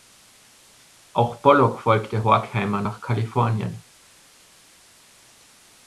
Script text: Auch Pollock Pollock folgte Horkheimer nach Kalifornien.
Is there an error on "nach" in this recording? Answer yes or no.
no